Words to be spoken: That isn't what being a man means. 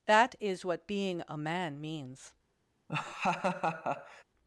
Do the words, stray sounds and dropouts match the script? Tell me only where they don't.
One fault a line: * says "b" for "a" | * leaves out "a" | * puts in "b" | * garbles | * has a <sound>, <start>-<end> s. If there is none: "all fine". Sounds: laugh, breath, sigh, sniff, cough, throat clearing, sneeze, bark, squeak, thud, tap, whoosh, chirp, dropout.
* says "is" for "isn't"
* has a laugh, 2.9-4.2 s